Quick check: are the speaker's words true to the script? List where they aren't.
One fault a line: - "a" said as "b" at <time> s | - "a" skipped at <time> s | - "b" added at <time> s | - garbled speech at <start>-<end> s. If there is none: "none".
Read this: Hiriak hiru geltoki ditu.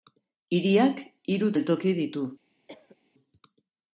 none